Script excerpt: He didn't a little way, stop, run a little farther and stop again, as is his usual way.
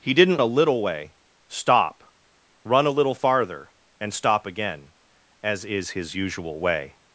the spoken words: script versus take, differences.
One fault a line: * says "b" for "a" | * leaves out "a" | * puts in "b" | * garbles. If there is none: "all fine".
all fine